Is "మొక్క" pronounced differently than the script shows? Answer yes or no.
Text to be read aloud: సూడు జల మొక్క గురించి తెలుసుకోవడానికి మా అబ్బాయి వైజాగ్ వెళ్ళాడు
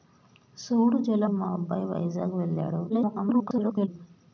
yes